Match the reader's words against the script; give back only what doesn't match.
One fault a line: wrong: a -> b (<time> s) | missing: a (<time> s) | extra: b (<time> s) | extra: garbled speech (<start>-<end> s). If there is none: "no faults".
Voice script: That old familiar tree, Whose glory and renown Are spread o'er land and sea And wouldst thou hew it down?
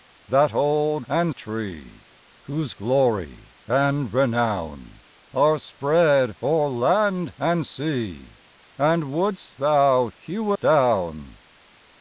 wrong: familiar -> and (1.1 s)
missing: it (10.5 s)